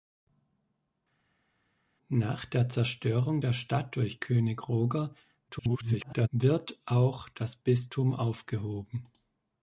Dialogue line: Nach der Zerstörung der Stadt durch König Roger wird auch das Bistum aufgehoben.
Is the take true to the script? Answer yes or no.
no